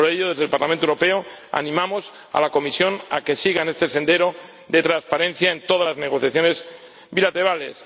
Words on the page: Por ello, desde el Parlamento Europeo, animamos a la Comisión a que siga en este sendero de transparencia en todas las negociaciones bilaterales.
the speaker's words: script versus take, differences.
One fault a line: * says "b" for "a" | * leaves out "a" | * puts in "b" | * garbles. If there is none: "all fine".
all fine